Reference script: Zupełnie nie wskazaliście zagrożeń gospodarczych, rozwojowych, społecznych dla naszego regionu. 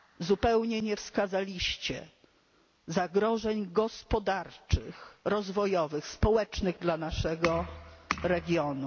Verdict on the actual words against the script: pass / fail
pass